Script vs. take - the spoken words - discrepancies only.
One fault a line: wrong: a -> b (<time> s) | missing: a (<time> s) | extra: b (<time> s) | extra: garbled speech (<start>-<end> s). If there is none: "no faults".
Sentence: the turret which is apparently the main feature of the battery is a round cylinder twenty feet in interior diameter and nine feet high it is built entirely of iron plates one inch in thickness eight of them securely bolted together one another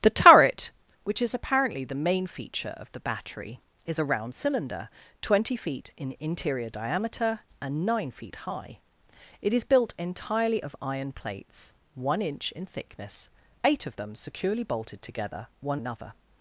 no faults